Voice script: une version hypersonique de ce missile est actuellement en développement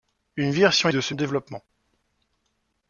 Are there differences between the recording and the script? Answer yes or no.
yes